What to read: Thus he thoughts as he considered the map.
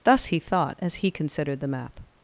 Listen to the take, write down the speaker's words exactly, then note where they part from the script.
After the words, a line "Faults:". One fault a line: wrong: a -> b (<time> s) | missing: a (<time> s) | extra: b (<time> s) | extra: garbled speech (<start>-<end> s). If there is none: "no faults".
Thus he thought as he considered the map.
Faults:
wrong: thoughts -> thought (0.4 s)